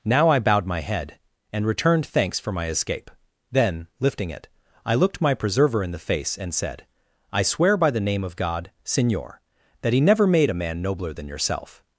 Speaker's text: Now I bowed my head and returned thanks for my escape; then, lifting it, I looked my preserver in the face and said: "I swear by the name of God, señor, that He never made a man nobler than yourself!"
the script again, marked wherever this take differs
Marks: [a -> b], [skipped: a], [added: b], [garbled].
Now I bowed my head and returned thanks for my escape; then, lifting it, I looked my preserver in the face and said: "I swear by the name of God, señor, that He never made a man nobler than yourself!"